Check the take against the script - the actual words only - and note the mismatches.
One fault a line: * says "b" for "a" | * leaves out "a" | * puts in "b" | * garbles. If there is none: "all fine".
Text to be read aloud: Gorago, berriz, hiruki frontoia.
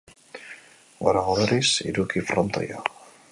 all fine